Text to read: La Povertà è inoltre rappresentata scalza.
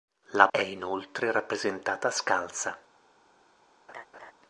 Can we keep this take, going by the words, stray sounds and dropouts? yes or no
no